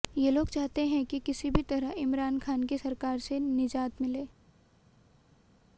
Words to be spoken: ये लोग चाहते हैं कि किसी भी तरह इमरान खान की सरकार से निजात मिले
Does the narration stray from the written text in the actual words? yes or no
no